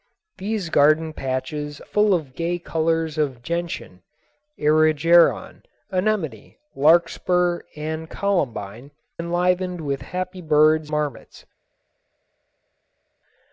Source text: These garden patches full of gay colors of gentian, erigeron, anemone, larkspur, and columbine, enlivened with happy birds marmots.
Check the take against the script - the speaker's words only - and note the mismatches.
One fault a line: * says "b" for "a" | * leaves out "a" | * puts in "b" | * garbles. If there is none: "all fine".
all fine